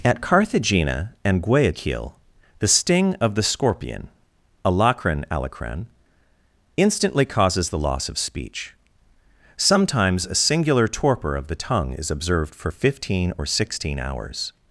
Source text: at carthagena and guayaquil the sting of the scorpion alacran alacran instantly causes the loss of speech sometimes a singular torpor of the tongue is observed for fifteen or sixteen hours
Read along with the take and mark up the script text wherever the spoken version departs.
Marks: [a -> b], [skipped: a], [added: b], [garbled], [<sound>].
at carthagena and guayaquil the sting of the scorpion alacran alacran instantly causes the loss of speech sometimes a singular torpor of the tongue is observed for fifteen or sixteen hours